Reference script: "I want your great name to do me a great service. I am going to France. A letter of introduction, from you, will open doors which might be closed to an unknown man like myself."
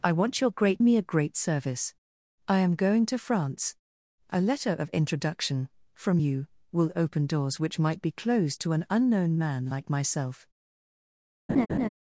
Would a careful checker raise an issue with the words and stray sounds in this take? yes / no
yes